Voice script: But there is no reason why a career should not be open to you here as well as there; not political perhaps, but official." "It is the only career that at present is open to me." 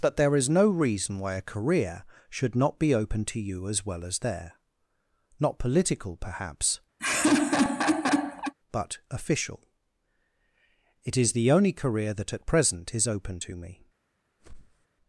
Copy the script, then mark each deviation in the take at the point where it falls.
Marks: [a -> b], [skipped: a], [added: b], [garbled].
But there is no reason why a career should not be open to you [skipped: here] as well as there; not political perhaps, but official." "It is the only career that at present is open to me."